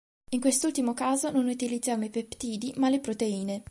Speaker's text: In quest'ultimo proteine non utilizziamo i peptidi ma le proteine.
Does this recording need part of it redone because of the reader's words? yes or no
yes